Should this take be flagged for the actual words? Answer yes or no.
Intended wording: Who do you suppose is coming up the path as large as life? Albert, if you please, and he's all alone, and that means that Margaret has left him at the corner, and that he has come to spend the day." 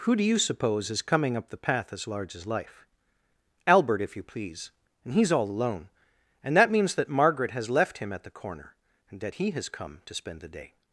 no